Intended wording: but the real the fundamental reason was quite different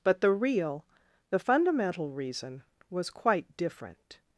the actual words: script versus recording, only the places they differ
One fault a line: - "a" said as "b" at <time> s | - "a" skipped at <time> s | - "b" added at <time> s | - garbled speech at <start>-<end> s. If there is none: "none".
none